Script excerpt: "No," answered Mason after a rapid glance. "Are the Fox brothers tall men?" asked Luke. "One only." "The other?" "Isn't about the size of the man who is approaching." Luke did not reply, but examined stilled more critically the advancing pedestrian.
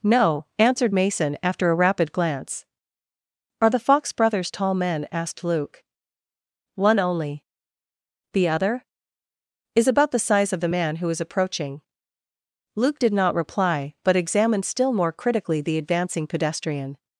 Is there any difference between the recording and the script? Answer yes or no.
yes